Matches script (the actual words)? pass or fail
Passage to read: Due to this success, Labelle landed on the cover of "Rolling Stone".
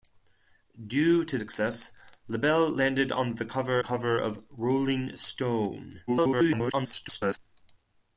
fail